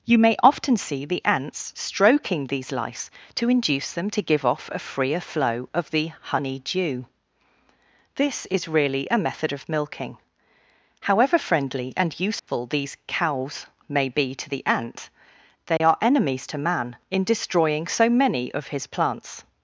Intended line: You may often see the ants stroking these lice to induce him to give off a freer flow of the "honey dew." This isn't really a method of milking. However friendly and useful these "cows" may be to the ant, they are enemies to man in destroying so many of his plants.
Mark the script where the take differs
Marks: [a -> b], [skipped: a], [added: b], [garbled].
You may often see the ants stroking these lice to induce [him -> them] to give off a freer flow of the "honey dew." This [isn't -> is] really a method of milking. However friendly and useful these "cows" may be to the ant, they are enemies to man in destroying so many of his plants.